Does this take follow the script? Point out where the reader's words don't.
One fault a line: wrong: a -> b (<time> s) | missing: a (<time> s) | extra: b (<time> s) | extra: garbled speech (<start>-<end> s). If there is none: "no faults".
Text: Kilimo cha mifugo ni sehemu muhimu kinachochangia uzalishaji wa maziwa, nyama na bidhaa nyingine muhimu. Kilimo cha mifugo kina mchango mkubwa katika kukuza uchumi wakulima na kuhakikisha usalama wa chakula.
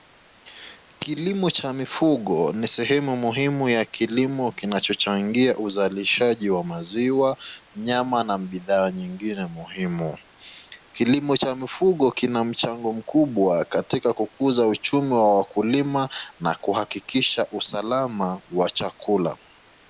extra: ya kilimo (3.7 s)
extra: wa (15.1 s)